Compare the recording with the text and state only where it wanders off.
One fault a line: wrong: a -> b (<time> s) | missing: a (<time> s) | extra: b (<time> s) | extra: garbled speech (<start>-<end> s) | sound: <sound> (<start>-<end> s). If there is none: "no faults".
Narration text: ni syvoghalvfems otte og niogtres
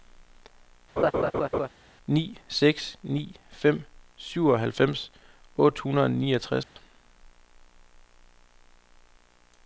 sound: laugh (1.0-1.7 s)
extra: seks ni fem (2.6 s)
extra: hundrede (5.8 s)
sound: dropout (6.6-6.8 s)